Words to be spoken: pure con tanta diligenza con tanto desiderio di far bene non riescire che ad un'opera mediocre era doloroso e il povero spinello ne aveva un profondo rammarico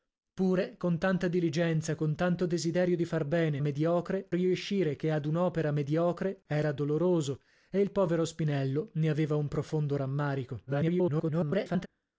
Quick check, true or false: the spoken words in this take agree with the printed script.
false